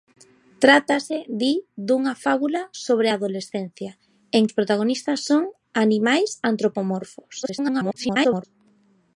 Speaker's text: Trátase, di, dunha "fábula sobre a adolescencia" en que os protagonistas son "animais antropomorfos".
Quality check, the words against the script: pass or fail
fail